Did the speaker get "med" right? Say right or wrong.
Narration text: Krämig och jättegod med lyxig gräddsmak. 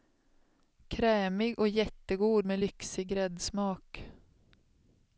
right